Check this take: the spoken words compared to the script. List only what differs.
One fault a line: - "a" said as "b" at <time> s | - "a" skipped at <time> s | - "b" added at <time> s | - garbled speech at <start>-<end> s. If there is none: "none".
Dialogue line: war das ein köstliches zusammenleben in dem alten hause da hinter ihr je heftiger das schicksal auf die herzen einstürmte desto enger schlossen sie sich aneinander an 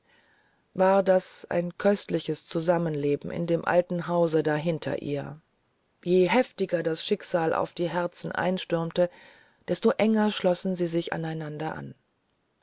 none